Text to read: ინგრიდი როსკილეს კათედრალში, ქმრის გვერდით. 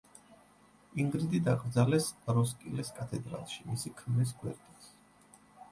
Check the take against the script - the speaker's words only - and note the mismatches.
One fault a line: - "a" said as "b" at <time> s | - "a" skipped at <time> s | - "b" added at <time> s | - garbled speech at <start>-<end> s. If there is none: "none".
- "დაკრძალეს" added at 1.5 s
- "მისი" added at 3.7 s